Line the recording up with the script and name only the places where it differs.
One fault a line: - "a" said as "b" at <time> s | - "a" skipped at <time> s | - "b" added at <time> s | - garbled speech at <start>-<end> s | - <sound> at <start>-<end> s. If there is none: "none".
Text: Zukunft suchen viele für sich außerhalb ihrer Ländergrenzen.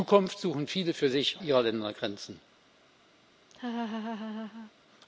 - "außerhalb" skipped at 1.4 s
- laugh at 3.5-4.7 s